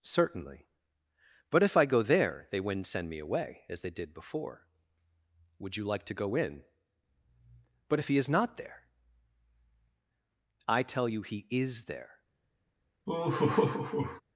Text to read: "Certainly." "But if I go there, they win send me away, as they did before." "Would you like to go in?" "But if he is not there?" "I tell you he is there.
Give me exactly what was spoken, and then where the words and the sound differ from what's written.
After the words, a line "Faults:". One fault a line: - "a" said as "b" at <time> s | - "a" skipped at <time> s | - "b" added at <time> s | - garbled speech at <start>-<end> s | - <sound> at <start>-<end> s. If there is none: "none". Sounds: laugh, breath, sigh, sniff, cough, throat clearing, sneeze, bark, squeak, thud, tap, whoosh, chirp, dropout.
"Certainly." "But if I go there, they wouldn't send me away, as they did before." "Would you like to go in?" "But if he is not there?" "I tell you he is there.
Faults:
- "win" said as "wouldn't" at 2.6 s
- laugh at 13.1-14.2 s